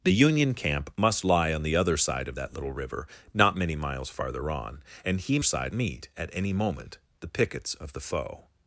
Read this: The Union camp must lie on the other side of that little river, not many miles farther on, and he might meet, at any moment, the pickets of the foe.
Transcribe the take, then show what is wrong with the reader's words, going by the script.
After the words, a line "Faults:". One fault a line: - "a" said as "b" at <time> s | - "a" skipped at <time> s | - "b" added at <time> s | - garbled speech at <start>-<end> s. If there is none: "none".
The Union camp must lie on the other side of that little river, not many miles farther on, and he side meet, at any moment, the pickets of the foe.
Faults:
- "might" said as "side" at 5.4 s